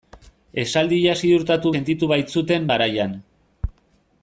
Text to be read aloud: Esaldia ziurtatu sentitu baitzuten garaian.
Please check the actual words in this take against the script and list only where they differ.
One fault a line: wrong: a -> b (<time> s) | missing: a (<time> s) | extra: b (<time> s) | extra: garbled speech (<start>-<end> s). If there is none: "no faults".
no faults